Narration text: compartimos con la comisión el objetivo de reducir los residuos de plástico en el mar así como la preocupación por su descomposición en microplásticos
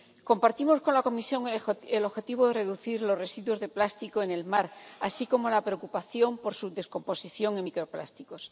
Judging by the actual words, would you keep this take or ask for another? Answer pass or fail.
pass